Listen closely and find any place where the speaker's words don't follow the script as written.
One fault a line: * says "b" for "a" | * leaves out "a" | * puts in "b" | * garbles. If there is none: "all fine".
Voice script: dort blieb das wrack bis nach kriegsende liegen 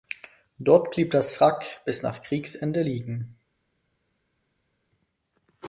all fine